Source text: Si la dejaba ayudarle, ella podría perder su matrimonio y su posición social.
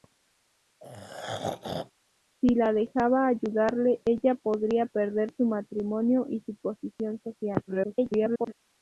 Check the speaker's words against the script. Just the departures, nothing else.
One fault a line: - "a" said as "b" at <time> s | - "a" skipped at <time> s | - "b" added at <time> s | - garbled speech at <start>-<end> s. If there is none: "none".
- garbled speech at 7.7-8.5 s